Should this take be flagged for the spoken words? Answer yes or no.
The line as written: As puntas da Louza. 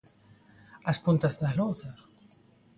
no